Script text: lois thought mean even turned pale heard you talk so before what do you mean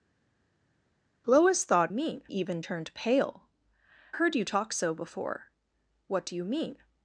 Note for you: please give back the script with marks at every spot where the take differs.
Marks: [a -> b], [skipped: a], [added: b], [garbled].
lois thought mean even turned pale heard you talk so before what do you mean